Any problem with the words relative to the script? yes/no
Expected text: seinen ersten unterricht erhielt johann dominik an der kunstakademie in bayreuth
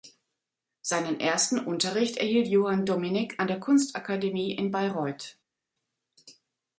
no